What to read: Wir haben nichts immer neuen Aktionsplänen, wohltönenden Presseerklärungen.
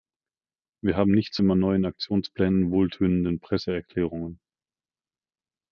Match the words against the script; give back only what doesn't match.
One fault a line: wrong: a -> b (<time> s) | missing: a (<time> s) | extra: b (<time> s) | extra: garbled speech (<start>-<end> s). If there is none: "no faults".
no faults